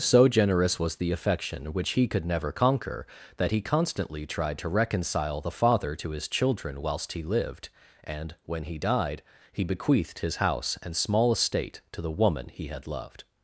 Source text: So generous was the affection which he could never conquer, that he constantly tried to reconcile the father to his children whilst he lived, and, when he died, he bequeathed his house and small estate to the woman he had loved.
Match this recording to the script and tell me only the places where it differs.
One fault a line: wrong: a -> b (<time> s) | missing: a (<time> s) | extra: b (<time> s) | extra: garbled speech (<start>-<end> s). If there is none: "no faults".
no faults